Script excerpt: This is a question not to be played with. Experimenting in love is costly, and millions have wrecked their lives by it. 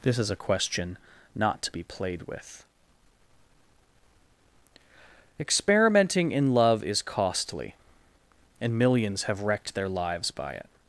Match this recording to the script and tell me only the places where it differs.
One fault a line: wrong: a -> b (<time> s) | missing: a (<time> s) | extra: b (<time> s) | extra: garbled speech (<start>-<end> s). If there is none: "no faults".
no faults